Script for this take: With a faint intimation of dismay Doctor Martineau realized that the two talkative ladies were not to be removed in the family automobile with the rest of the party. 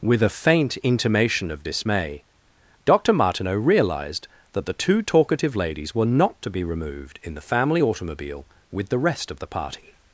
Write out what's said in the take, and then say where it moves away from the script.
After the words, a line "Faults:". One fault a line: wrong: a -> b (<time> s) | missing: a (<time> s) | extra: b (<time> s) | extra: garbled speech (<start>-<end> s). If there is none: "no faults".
With a faint intimation of dismay Doctor Martineau realized that the two talkative ladies were not to be removed in the family automobile with the rest of the party.
Faults:
no faults